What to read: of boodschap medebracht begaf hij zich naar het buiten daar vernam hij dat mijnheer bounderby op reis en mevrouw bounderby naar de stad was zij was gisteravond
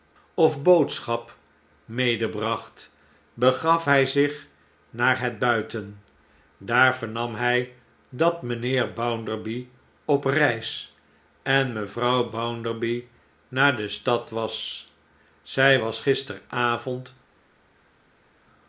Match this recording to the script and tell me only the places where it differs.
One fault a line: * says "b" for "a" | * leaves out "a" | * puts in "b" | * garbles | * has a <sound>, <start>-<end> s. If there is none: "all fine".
all fine